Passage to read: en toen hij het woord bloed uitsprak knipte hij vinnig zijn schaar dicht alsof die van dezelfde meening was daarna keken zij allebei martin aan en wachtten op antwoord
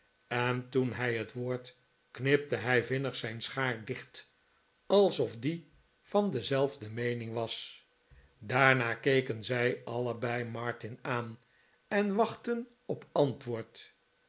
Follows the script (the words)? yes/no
no